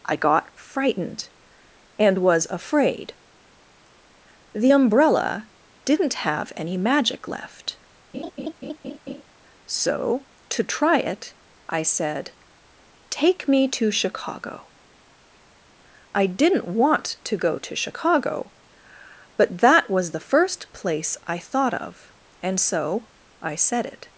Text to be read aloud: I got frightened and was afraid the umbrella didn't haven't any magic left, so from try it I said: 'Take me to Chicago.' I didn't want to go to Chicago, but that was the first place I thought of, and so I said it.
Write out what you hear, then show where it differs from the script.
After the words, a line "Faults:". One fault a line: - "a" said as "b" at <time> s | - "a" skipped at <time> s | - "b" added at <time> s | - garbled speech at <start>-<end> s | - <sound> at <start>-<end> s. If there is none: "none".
I got frightened and was afraid the umbrella didn't have any magic left, so to try it I said: 'Take me to Chicago.' I didn't want to go to Chicago, but that was the first place I thought of, and so I said it.
Faults:
- "haven't" said as "have" at 6.2 s
- laugh at 8.1-9.2 s
- "from" said as "to" at 10.5 s